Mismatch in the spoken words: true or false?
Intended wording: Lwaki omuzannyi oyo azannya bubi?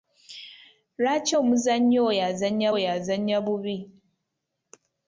true